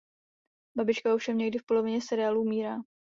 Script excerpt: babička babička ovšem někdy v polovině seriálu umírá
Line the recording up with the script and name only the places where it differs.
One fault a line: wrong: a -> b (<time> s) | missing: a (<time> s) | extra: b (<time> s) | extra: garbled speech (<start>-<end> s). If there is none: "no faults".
missing: babička (1.1 s)